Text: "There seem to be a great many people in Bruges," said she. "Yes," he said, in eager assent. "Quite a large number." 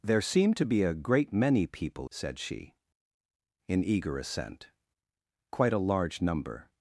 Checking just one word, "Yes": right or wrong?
wrong